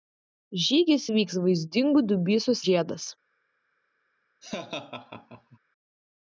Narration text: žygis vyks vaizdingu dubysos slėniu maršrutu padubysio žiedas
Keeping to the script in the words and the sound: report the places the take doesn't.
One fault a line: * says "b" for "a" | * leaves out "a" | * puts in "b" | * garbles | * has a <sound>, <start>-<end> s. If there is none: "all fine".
* leaves out "slėniu maršrutu padubysio"
* has a laugh, 4.4-5.6 s